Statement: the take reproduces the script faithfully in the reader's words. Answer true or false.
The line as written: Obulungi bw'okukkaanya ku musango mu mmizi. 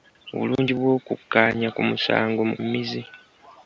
true